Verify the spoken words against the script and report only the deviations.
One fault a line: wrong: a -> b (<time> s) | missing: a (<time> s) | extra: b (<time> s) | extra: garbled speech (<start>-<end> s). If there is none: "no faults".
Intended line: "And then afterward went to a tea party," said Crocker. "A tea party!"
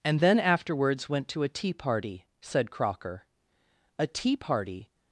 wrong: afterward -> afterwards (0.4 s)